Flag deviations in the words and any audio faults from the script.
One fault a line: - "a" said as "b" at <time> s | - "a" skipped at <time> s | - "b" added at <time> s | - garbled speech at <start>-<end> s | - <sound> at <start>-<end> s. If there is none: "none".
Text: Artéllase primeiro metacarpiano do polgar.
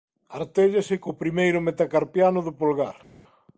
- "co" added at 1.0 s